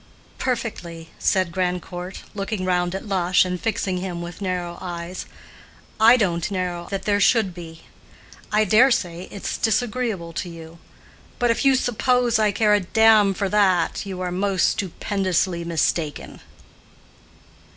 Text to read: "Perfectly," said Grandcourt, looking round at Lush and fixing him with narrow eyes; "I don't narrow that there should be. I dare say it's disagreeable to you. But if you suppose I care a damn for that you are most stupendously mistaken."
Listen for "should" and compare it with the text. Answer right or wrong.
right